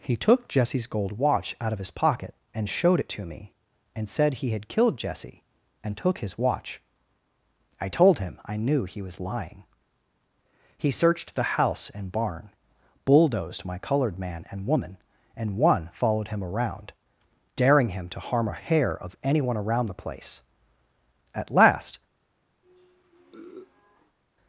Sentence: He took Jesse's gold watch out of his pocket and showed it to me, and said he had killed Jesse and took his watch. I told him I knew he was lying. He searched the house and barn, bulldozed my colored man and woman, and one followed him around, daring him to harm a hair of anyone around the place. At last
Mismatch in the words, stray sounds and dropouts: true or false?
true